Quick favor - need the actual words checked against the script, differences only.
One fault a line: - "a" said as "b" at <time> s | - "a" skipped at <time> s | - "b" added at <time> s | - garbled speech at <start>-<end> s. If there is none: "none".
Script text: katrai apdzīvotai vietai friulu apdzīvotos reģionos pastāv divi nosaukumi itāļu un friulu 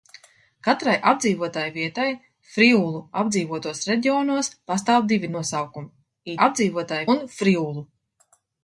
- "itāļu" said as "apdzīvotai" at 6.5 s